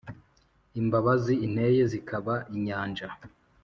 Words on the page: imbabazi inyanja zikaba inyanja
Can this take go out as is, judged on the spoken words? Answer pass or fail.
fail